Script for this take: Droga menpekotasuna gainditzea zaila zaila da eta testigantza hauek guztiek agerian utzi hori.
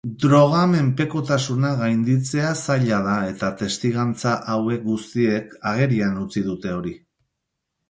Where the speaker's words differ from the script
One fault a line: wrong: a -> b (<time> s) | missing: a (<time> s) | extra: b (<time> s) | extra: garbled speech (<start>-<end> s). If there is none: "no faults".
missing: zaila (3.0 s)
extra: dute (6.5 s)